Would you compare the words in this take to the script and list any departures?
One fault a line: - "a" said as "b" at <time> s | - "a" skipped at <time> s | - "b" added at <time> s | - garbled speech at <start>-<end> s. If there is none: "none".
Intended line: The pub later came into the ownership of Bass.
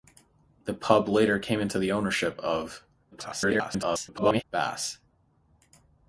- garbled speech at 3.1-4.4 s